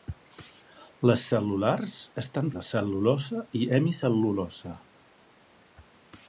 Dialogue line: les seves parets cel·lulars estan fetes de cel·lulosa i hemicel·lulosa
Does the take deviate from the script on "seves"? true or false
true